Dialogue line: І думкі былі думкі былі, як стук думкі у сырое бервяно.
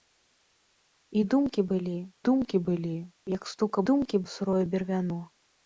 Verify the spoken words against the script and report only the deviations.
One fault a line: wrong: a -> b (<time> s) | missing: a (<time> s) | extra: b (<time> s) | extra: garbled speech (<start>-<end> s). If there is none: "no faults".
no faults